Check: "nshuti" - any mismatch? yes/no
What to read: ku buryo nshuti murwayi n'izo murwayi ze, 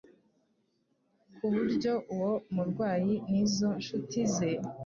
yes